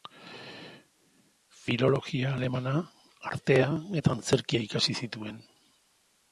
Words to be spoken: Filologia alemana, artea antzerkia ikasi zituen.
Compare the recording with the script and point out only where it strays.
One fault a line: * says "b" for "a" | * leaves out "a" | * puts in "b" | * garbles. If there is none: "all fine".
* puts in "eta"